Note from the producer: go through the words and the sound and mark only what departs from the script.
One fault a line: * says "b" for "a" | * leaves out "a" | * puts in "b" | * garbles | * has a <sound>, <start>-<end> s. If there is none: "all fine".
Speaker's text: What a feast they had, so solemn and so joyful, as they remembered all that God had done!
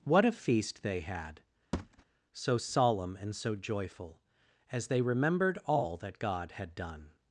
* has a thud, 1.7-2.0 s